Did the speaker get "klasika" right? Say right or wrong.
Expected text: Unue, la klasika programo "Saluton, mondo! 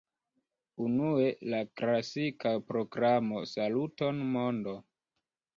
right